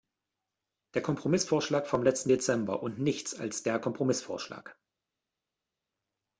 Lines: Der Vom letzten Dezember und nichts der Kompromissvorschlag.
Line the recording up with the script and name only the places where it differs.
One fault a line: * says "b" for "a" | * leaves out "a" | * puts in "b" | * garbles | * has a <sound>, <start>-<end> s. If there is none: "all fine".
* puts in "Kompromissvorschlag"
* puts in "als"